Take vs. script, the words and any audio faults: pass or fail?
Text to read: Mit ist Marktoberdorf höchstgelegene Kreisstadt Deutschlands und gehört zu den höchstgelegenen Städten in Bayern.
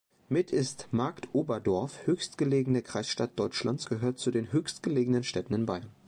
fail